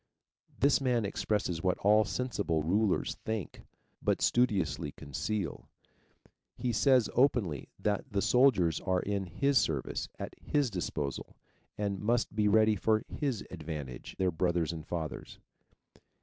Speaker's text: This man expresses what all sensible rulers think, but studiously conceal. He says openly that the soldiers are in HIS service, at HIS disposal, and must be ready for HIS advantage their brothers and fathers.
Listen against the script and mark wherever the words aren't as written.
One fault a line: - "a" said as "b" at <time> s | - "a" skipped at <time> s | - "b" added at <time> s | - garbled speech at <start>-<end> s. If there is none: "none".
none